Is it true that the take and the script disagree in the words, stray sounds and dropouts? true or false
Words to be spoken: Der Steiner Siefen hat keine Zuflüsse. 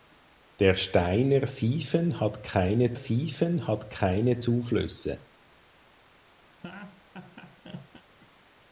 true